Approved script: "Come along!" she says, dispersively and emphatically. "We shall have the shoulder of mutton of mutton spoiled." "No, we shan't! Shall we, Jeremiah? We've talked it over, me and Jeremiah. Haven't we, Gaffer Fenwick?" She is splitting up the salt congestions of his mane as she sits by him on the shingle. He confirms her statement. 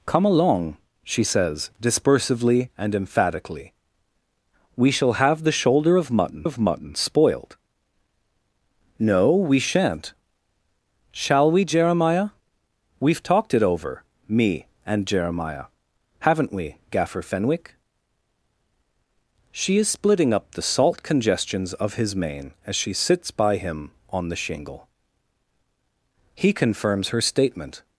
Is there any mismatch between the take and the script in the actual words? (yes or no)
no